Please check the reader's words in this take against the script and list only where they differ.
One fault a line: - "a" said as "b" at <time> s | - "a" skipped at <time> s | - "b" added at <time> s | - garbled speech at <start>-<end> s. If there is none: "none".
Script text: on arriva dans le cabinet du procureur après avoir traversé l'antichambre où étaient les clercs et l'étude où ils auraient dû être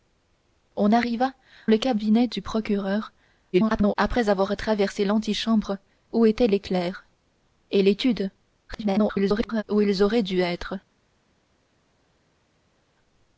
- "dans" skipped at 1.3 s
- garbled speech at 3.5-4.0 s
- garbled speech at 8.7-9.6 s